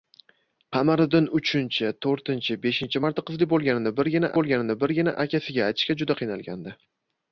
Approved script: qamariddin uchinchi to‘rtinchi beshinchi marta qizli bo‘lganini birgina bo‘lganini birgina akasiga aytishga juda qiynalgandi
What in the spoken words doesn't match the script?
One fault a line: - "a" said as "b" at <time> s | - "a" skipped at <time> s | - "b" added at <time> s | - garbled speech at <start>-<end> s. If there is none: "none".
none